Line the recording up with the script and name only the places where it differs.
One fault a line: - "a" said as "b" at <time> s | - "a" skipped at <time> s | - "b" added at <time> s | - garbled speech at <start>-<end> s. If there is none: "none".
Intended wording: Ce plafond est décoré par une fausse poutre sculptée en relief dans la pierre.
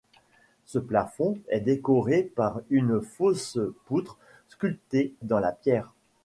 - "en relief" skipped at 5.1 s